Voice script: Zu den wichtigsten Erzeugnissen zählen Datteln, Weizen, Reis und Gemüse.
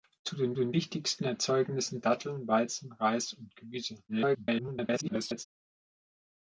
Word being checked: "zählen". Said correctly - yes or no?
no